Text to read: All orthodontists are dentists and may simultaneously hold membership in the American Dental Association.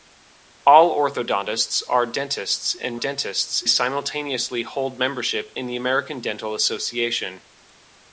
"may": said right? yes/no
no